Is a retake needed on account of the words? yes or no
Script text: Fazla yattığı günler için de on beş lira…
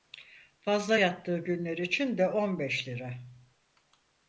no